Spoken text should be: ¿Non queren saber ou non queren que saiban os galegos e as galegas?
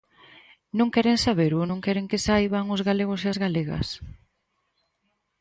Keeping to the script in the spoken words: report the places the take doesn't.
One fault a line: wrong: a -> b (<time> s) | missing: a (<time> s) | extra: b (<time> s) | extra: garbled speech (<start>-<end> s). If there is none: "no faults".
no faults